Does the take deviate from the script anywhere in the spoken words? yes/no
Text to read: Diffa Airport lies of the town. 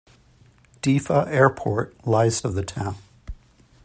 no